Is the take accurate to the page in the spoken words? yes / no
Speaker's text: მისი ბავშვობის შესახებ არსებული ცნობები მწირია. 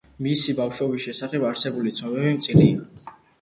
yes